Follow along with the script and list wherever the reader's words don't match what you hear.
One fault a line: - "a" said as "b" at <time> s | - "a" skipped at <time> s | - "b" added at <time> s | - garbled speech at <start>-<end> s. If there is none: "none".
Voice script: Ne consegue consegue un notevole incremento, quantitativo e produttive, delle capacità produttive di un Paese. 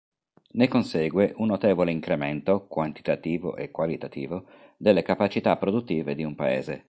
- "consegue" skipped at 1.3 s
- "produttive" said as "qualitativo" at 3.7 s